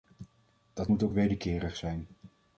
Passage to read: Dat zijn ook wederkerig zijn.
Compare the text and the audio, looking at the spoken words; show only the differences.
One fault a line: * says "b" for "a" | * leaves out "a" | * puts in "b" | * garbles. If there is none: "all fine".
* says "moet" for "zijn"